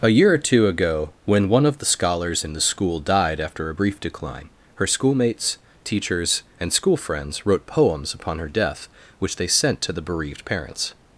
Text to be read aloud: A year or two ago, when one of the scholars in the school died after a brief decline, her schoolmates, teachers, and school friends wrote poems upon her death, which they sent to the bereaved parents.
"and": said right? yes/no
yes